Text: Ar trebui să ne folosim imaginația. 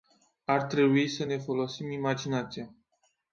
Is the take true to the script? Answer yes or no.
yes